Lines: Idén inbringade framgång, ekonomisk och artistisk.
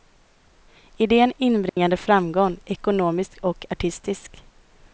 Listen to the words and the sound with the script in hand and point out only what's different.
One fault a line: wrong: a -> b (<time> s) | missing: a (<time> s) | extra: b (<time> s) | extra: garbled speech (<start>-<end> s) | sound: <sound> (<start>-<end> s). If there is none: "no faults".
sound: dropout (1.7-1.8 s)